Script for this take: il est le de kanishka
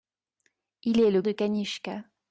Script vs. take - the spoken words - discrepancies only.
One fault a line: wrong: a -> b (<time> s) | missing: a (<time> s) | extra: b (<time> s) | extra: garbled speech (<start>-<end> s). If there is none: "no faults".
no faults